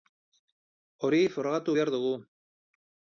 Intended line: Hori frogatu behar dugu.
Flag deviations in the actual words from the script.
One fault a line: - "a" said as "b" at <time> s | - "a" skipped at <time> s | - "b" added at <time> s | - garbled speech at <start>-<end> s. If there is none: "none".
none